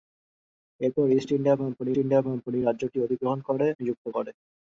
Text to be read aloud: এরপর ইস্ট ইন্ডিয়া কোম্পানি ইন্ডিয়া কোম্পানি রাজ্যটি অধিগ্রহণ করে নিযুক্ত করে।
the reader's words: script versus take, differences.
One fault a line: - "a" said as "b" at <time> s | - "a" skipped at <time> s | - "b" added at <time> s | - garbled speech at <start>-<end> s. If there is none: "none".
none